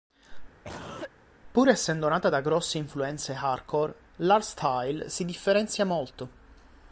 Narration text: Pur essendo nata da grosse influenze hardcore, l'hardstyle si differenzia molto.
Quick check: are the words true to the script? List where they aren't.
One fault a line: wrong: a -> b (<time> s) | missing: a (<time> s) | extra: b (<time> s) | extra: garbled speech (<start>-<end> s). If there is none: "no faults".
no faults